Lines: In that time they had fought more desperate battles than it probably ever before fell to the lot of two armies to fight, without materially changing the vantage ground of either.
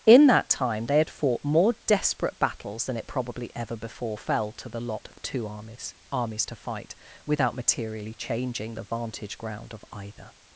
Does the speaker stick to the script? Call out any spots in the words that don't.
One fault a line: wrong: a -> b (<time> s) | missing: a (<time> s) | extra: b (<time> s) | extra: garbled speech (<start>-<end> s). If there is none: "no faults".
extra: armies (6.1 s)